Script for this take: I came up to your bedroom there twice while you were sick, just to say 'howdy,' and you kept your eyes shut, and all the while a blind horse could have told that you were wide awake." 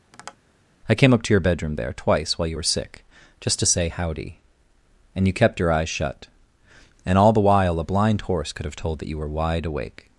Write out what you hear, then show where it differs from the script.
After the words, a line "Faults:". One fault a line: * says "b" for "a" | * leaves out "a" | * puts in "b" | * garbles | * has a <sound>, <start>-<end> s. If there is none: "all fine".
I came up to your bedroom there twice while you were sick, just to say 'howdy,' and you kept your eyes shut, and all the while a blind horse could have told that you were wide awake."
Faults:
* has a tap, 0.1-0.4 s